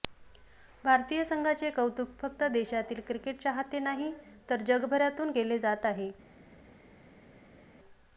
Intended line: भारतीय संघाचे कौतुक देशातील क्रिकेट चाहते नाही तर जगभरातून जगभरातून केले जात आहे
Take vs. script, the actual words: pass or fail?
fail